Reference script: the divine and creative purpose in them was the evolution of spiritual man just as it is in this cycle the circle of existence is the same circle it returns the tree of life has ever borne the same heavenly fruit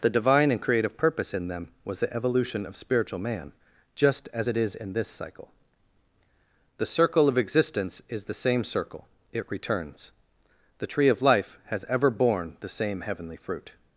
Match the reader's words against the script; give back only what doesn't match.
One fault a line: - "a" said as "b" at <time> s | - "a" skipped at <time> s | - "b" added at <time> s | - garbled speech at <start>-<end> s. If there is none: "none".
none